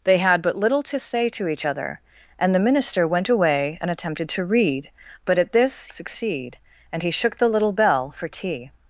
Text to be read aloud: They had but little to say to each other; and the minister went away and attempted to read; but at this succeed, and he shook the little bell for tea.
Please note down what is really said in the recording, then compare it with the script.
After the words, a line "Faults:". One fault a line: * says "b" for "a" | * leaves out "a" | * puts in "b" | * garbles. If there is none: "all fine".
They had but little to say to each other; and the minister went away and attempted to read; but at this succeed, and he shook the little bell for tea.
Faults:
all fine